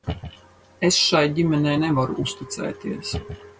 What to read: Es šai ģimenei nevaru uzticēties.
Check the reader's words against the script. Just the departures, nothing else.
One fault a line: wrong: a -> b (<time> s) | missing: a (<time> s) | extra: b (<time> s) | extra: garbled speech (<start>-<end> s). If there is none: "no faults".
no faults